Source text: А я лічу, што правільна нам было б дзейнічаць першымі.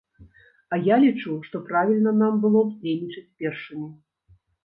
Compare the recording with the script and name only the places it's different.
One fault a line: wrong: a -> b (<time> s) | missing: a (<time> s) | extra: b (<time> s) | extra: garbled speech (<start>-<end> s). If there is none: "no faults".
no faults